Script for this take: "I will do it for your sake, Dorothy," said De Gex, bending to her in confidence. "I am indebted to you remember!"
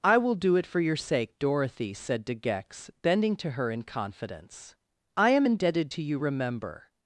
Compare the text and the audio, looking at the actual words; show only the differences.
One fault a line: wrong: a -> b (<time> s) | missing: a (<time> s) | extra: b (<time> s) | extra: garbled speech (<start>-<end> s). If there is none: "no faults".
no faults